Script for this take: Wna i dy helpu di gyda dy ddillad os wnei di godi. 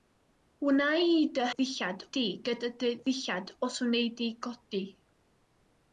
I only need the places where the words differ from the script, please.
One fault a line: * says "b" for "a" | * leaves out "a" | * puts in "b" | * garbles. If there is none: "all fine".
* says "ddillad" for "helpu"